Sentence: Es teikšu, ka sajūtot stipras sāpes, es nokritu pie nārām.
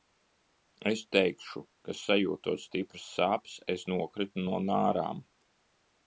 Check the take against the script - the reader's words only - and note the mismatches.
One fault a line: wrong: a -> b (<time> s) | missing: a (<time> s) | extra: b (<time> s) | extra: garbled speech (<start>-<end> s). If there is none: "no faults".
wrong: pie -> no (4.5 s)